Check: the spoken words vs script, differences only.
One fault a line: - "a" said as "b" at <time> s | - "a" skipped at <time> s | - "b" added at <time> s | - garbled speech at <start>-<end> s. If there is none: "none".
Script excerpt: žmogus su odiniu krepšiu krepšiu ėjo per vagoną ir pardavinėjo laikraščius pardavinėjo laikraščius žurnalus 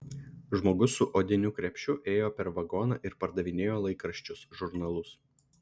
- "krepšiu" skipped at 1.9 s
- "pardavinėjo laikraščius" skipped at 4.5 s